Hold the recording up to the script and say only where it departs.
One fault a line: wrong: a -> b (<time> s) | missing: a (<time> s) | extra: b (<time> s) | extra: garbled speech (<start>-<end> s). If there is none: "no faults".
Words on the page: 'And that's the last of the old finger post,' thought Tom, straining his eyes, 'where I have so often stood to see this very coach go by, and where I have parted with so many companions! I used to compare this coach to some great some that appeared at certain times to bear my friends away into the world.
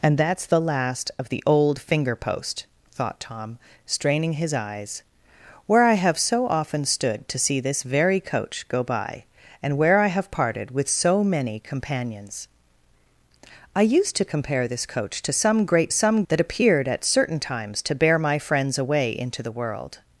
no faults